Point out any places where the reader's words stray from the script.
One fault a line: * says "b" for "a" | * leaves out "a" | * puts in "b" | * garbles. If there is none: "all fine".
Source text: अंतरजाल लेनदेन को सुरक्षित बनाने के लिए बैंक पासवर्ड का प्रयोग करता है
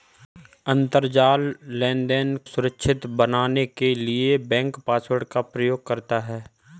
* leaves out "को"